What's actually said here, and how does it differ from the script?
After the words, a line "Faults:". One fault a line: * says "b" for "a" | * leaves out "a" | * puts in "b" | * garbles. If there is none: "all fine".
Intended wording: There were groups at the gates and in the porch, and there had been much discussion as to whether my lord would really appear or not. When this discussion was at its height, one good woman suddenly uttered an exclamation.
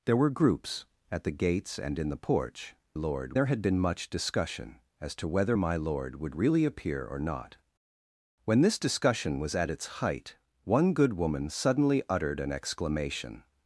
There were groups at the gates and in the porch, lord there had been much discussion as to whether my lord would really appear or not. When this discussion was at its height, one good woman suddenly uttered an exclamation.
Faults:
* says "lord" for "and"